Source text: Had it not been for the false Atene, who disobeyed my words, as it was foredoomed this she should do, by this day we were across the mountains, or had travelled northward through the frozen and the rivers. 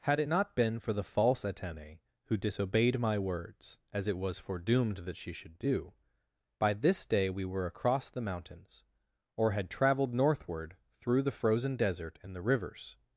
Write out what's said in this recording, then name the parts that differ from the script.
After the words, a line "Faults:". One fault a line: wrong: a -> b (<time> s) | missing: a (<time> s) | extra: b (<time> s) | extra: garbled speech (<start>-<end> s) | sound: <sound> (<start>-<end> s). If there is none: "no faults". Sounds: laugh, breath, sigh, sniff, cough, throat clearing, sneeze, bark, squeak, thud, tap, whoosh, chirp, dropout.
Had it not been for the false Atene, who disobeyed my words, as it was foredoomed that she should do, by this day we were across the mountains, or had travelled northward through the frozen desert and the rivers.
Faults:
wrong: this -> that (5.0 s)
extra: desert (11.8 s)